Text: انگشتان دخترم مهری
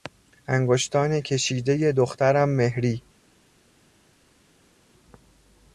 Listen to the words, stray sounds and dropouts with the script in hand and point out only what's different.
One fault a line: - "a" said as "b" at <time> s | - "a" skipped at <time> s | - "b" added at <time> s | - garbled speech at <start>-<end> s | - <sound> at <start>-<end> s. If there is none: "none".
- "کشیدهی" added at 1.2 s